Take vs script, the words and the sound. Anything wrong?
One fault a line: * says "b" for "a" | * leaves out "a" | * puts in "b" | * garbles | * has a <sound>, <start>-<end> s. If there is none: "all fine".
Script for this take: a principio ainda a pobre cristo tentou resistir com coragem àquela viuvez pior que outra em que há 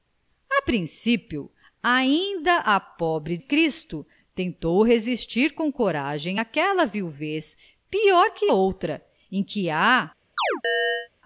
* has a chirp, 10.4-11.1 s